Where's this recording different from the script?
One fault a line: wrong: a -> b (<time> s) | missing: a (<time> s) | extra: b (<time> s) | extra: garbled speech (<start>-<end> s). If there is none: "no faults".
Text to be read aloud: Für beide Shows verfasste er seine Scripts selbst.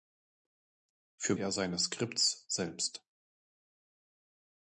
missing: beide Shows verfasste (1.4 s)